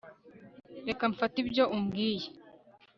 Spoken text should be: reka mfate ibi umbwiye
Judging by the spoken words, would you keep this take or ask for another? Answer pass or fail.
fail